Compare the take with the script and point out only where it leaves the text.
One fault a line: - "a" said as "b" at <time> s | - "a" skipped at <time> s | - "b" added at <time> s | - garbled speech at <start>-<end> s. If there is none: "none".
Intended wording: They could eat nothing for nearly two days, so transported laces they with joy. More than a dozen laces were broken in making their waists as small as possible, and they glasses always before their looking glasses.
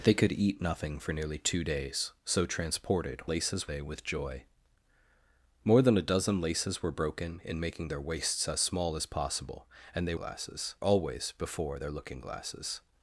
none